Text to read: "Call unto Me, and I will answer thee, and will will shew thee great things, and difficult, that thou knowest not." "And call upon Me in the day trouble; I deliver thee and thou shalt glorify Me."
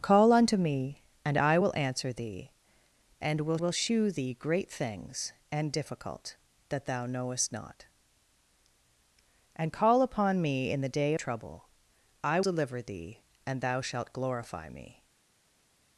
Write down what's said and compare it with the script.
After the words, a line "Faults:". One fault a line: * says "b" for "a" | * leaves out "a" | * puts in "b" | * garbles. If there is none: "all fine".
"Call unto Me, and I will answer thee, and will will shew thee great things, and difficult, that thou knowest not." "And call upon Me in the day trouble; I deliver thee and thou shalt glorify Me."
Faults:
all fine